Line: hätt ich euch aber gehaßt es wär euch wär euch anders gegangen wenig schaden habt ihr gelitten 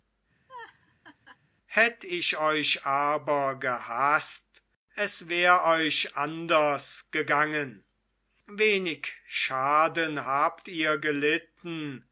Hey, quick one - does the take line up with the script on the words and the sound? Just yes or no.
no